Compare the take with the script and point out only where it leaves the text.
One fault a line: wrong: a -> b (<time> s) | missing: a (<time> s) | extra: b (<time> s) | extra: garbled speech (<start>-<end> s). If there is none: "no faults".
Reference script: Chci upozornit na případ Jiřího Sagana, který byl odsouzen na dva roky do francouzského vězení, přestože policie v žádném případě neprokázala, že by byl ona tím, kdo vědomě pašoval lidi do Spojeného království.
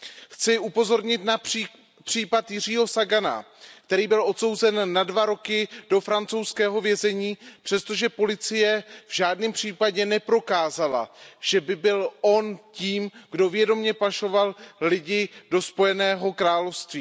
wrong: ona -> on (12.2 s)